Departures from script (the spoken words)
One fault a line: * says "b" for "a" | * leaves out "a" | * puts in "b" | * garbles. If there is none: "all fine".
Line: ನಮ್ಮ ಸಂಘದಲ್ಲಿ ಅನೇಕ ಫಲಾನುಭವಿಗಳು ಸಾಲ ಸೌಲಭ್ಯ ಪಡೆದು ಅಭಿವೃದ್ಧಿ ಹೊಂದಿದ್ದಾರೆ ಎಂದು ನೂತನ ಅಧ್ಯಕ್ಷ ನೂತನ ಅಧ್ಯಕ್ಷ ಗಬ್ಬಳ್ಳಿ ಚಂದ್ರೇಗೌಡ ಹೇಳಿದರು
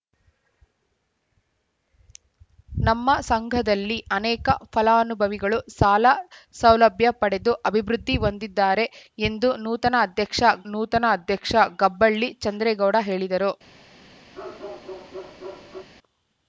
all fine